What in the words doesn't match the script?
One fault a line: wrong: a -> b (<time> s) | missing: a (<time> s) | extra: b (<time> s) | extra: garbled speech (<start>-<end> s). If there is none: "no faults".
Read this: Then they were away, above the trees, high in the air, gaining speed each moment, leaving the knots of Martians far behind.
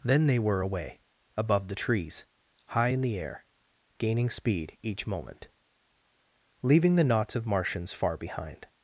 no faults